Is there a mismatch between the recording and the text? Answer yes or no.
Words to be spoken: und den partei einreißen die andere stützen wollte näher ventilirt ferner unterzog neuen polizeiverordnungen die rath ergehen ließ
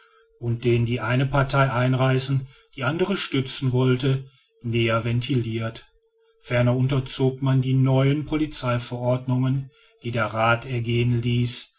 yes